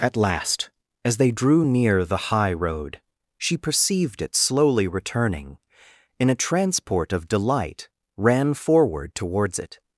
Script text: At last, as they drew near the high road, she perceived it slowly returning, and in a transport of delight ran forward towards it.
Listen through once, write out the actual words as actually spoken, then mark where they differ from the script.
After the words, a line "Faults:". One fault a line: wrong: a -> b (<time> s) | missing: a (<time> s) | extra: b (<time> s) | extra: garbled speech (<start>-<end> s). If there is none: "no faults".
At last, as they drew near the high road, she perceived it slowly returning, in a transport of delight ran forward towards it.
Faults:
missing: and (5.6 s)